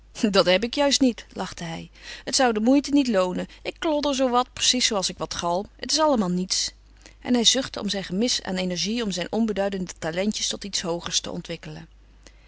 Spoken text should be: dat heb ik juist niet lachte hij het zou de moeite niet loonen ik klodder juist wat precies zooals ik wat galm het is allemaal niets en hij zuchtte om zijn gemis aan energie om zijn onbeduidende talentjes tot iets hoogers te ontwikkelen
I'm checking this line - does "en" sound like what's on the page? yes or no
yes